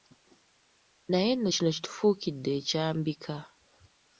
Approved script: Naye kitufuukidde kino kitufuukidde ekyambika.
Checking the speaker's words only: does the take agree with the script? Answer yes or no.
no